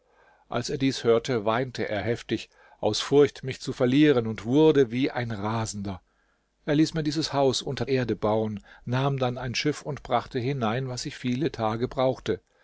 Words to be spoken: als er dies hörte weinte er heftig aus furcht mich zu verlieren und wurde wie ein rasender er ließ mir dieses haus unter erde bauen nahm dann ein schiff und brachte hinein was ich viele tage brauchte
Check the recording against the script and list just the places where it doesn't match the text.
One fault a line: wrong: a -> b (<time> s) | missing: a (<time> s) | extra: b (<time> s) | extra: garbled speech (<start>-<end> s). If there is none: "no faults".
no faults